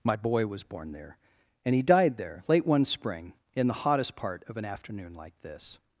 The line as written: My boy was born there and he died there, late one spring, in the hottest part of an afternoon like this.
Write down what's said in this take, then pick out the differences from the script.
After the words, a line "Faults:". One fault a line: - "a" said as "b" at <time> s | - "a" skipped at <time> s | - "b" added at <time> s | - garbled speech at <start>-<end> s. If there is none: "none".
My boy was born there and he died there, late one spring, in the hottest part of an afternoon like this.
Faults:
none